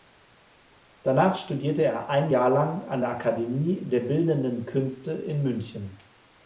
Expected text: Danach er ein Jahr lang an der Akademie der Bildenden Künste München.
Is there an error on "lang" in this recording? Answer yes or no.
no